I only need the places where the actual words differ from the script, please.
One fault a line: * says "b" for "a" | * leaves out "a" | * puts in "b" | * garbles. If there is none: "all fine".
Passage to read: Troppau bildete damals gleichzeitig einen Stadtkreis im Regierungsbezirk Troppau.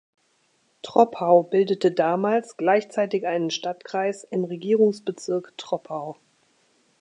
all fine